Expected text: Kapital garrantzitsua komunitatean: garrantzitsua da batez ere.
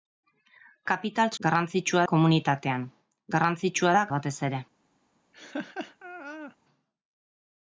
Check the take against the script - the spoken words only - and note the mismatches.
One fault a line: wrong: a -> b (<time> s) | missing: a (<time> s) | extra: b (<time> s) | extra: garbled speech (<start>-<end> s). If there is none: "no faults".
no faults